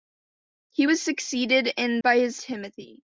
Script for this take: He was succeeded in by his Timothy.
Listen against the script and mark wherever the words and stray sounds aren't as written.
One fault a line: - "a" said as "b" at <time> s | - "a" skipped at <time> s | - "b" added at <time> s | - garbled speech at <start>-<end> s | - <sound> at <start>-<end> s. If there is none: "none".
none